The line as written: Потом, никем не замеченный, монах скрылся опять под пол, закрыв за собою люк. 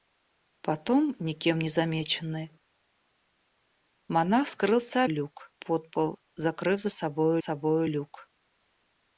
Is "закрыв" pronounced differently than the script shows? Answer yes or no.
no